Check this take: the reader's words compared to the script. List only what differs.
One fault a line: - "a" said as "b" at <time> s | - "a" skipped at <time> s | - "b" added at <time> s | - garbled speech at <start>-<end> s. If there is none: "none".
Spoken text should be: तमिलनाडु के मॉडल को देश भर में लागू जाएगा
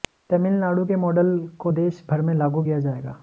- "किया" added at 2.6 s